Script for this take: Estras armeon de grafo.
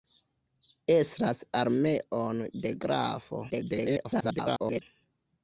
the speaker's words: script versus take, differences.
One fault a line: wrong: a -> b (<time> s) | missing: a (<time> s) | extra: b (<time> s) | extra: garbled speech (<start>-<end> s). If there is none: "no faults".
extra: garbled speech (3.5-4.8 s)